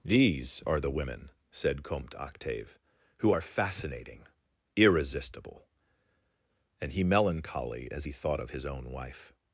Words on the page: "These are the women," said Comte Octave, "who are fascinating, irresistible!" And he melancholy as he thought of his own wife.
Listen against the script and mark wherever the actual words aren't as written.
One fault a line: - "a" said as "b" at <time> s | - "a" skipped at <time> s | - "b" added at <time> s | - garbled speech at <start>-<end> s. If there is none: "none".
none